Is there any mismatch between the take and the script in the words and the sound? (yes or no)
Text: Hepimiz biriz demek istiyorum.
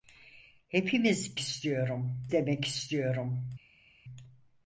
yes